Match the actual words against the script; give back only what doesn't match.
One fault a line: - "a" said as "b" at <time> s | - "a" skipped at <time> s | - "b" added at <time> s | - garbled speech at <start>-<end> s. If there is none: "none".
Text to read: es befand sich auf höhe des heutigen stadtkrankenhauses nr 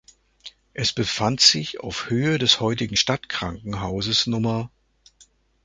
none